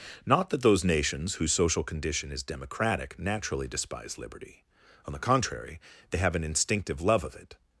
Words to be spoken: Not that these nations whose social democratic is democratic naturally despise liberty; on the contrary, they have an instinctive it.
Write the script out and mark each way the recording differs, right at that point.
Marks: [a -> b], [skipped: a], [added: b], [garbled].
Not that [these -> those] nations whose social [democratic -> condition] is democratic naturally despise liberty; on the contrary, they have an instinctive [added: love of] it.